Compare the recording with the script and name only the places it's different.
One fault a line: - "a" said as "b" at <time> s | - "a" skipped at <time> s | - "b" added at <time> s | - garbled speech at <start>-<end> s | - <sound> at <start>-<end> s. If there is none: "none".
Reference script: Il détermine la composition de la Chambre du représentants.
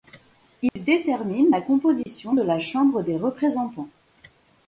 - dropout at 0.7-0.8 s
- dropout at 2.0-2.1 s
- "du" said as "des" at 3.0 s